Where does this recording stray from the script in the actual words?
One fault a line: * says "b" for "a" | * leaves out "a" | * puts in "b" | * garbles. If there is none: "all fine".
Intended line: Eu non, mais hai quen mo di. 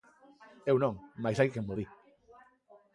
all fine